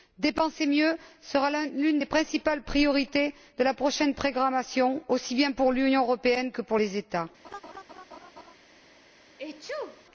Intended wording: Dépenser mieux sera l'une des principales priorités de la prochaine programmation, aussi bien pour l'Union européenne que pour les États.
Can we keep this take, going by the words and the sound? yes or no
no